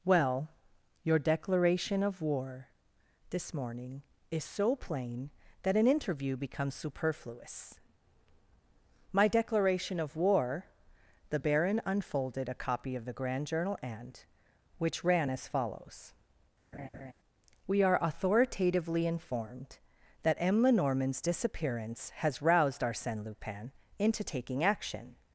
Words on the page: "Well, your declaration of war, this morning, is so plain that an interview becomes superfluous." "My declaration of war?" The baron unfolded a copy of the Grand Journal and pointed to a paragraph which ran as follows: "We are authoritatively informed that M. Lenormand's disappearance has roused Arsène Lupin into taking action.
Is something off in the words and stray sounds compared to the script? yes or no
yes